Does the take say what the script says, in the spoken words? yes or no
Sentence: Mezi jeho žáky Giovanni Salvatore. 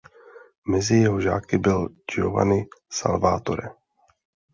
no